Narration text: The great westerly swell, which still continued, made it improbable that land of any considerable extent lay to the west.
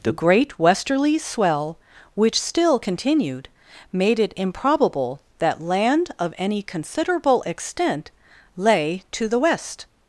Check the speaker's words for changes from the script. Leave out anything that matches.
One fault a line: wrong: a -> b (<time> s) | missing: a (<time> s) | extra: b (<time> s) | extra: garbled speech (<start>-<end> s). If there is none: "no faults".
no faults